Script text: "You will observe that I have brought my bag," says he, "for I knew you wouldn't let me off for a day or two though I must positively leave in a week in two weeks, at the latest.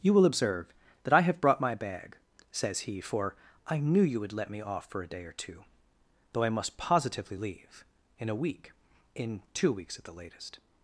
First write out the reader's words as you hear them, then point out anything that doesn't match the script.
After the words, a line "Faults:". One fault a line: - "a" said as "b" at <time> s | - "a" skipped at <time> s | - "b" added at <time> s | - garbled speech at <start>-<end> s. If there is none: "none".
"You will observe that I have brought my bag," says he, "for I knew you would let me off for a day or two though I must positively leave in a week in two weeks, at the latest.
Faults:
- "wouldn't" said as "would" at 4.2 s